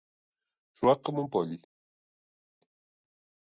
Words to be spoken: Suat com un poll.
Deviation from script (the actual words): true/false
false